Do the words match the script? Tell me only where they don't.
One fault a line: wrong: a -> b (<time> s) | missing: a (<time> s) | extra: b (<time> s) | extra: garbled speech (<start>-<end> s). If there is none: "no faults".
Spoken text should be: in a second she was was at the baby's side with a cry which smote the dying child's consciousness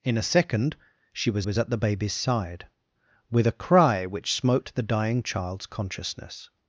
no faults